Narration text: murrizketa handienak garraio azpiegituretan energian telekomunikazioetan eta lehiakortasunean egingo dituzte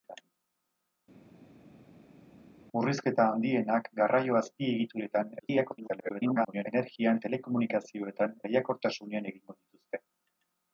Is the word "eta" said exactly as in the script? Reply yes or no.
no